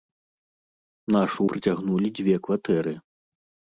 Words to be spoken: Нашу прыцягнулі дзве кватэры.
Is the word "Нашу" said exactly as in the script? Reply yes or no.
yes